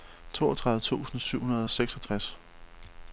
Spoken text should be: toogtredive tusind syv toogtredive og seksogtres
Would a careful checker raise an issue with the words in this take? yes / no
yes